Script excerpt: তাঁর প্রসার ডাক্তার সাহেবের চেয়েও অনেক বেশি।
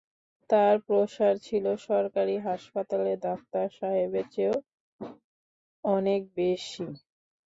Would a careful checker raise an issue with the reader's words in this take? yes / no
yes